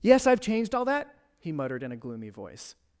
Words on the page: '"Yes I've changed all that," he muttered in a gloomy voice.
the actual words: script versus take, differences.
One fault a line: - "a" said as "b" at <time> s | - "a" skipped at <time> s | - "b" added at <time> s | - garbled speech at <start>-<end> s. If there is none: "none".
none